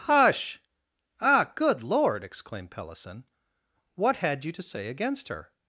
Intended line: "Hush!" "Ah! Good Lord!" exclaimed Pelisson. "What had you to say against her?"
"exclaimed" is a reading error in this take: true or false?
false